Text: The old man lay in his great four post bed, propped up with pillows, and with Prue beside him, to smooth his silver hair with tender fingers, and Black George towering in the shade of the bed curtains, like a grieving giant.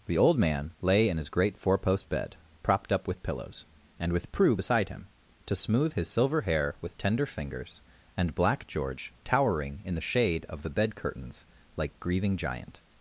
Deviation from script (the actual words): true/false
true